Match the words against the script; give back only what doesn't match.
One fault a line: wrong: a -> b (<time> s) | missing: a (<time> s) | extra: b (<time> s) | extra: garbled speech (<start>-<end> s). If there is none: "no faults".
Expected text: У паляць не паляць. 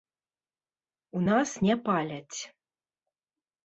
wrong: паляць -> нас (1.3 s)